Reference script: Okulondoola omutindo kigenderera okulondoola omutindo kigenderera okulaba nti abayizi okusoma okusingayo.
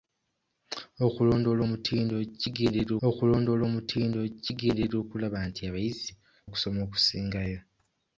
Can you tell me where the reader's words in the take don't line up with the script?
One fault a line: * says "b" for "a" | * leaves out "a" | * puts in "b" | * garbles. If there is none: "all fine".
all fine